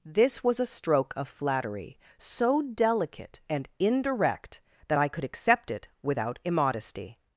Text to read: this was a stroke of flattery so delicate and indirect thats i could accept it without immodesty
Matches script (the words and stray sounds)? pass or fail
fail